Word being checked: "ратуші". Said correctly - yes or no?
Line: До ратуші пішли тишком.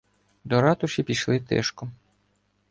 yes